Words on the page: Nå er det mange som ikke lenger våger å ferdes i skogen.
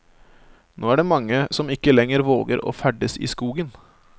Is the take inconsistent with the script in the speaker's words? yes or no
no